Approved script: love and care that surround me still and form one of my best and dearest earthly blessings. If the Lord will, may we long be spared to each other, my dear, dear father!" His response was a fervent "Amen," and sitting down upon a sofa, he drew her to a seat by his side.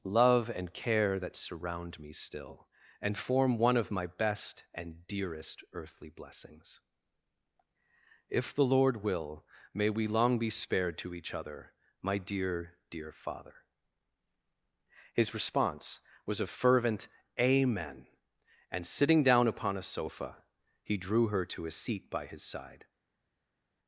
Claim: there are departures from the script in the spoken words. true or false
false